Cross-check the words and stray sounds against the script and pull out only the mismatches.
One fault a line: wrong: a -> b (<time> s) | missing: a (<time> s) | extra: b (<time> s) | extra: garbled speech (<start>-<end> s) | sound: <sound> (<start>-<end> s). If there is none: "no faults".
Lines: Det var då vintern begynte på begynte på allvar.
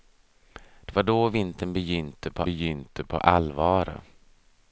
no faults